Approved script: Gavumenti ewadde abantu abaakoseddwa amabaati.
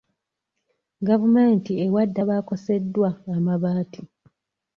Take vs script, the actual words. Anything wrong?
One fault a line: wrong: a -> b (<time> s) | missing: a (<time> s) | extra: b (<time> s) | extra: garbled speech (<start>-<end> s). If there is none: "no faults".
missing: abantu (2.2 s)